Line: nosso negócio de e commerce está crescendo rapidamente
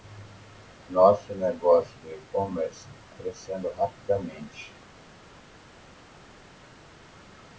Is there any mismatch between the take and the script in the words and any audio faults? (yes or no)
yes